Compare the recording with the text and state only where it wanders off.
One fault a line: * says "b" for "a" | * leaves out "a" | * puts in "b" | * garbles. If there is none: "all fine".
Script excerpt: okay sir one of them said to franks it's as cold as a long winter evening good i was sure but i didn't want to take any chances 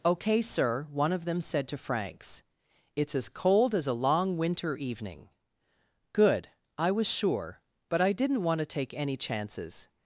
all fine